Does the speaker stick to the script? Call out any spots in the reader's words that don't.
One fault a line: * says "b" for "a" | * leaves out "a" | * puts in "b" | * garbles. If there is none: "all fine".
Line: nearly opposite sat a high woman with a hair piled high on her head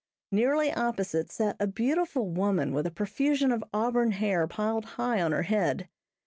* says "beautiful" for "high"
* puts in "profusion of auburn"